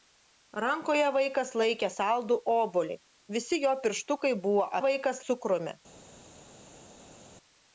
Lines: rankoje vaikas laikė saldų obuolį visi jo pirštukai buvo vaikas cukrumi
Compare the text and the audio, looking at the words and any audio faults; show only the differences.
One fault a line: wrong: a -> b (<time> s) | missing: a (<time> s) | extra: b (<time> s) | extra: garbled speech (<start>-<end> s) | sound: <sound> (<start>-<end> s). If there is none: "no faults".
no faults